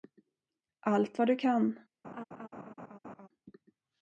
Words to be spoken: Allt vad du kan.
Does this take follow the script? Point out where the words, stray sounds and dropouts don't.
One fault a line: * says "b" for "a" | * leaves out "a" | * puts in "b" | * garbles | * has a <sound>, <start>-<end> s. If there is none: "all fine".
* has a laugh, 2.0-3.3 s